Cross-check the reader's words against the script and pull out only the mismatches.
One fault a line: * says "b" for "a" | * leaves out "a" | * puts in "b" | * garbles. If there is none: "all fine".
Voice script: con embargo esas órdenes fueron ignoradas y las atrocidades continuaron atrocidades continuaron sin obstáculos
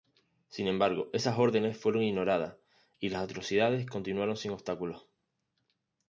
* says "sin" for "con"
* leaves out "atrocidades continuaron"